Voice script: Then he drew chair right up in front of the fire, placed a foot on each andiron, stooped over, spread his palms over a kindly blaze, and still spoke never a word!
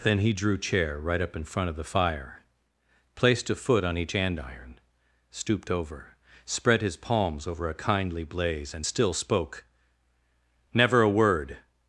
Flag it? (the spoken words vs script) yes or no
no